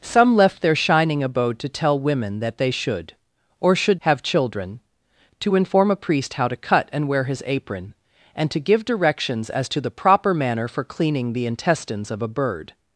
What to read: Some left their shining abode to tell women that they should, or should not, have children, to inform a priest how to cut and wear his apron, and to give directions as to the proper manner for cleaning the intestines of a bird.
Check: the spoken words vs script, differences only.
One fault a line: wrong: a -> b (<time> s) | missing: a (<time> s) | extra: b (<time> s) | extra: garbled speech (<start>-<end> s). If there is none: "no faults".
missing: not (4.0 s)